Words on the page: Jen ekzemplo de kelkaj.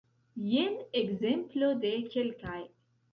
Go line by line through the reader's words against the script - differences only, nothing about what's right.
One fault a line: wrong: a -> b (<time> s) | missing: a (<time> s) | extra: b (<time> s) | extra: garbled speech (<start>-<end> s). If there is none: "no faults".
no faults